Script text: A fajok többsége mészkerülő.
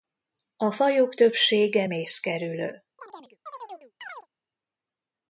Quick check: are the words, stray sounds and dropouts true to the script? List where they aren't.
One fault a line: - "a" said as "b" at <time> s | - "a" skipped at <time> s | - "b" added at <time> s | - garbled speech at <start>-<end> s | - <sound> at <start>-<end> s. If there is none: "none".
- chirp at 3.0-4.3 s